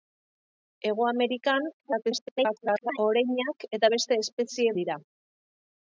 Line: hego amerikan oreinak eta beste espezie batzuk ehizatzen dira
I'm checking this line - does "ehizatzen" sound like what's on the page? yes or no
no